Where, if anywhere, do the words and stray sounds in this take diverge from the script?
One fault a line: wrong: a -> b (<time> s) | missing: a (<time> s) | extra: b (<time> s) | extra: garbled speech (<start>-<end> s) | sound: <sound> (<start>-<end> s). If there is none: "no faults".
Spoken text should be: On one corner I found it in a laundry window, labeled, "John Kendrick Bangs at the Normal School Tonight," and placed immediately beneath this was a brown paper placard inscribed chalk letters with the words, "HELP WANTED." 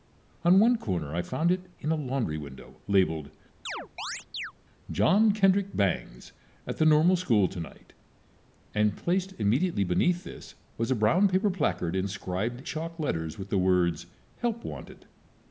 sound: chirp (3.7-4.5 s)